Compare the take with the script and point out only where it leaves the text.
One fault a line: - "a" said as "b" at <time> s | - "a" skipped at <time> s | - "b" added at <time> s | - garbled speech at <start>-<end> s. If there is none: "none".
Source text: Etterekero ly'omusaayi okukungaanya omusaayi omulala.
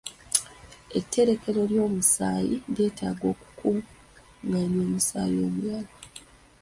- "lyetaaga" added at 2.7 s